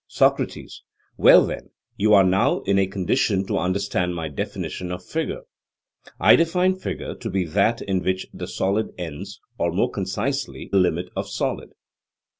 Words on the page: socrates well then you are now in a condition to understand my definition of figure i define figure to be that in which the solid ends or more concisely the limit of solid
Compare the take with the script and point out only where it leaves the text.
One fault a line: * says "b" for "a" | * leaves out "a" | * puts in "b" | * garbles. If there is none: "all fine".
* leaves out "the"